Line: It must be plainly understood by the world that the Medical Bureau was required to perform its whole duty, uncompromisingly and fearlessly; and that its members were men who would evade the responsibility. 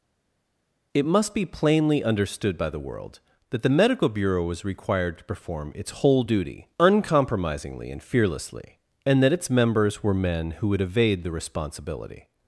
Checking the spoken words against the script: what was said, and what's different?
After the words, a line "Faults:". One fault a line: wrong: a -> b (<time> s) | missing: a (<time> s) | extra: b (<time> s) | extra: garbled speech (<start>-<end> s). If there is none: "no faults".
It must be plainly understood by the world that the Medical Bureau was required to perform its whole duty, uncompromisingly and fearlessly; and that its members were men who would evade the responsibility.
Faults:
no faults